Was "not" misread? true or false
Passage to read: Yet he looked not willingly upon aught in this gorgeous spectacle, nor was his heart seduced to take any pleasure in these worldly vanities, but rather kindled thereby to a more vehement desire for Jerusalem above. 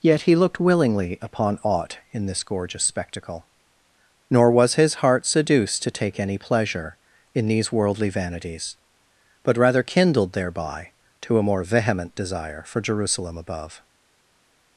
true